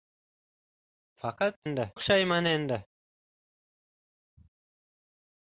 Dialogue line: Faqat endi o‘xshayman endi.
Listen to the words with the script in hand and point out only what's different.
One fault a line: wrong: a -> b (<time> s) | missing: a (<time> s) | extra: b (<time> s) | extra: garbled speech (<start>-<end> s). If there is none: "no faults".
no faults